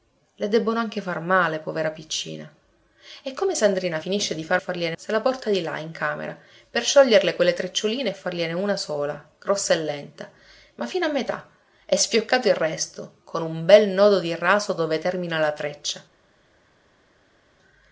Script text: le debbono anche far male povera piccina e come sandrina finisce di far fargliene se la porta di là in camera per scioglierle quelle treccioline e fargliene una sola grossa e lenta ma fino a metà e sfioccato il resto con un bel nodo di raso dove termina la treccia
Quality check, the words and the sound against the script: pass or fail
pass